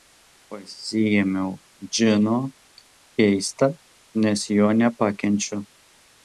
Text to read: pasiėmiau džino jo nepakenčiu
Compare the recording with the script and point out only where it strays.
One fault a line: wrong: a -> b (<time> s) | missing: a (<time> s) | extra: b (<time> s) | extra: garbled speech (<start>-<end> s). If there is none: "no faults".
extra: keista nes (3.2 s)